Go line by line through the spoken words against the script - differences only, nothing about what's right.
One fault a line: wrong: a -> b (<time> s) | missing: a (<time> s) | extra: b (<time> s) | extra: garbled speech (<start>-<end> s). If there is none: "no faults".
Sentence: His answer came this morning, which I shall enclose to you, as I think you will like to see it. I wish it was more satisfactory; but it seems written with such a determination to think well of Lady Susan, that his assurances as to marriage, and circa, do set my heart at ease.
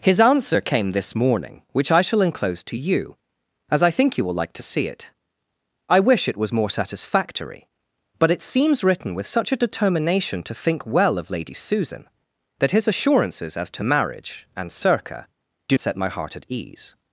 no faults